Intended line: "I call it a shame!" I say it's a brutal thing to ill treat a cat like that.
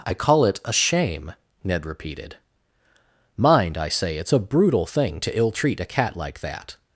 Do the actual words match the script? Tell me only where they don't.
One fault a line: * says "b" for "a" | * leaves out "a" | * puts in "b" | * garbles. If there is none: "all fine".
* puts in "Ned repeated Mind"